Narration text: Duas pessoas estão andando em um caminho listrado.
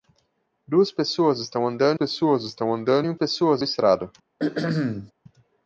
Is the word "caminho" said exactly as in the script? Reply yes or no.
no